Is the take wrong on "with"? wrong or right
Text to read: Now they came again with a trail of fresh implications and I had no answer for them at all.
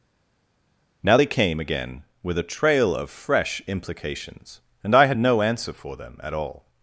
right